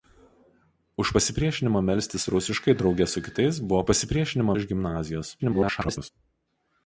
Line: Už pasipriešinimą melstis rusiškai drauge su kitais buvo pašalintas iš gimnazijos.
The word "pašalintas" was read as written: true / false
false